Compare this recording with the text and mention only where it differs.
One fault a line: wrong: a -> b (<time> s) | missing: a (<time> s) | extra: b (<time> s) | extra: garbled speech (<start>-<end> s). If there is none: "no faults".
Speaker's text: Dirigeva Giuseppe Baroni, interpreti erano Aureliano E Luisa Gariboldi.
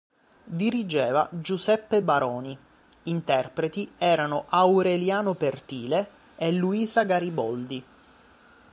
extra: Pertile (5.3 s)